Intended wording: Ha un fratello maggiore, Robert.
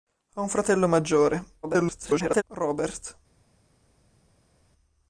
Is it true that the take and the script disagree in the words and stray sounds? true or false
true